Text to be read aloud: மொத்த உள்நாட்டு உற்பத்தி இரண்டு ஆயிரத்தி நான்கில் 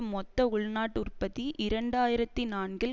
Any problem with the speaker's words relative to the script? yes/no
no